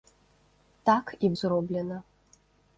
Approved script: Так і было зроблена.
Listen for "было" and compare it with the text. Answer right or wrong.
wrong